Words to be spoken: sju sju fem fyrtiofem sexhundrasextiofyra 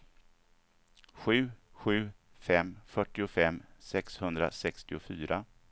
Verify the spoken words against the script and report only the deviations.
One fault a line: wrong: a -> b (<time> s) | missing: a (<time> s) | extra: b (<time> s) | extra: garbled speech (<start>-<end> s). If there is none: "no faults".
no faults